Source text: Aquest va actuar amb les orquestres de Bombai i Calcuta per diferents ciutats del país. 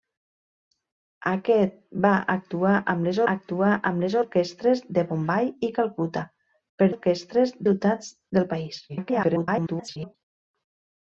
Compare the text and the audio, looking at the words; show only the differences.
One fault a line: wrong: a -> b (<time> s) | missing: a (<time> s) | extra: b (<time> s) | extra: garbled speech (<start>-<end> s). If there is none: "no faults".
extra: actuar amb les (3.3 s)
wrong: diferents -> orquestres (6.9 s)
extra: garbled speech (8.9-10.2 s)